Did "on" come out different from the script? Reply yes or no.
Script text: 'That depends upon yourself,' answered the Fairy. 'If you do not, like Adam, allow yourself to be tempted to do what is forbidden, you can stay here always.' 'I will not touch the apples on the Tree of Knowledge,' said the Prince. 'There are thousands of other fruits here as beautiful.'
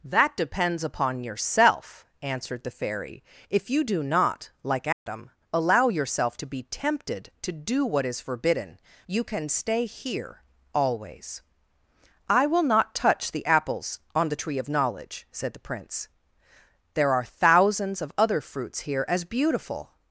no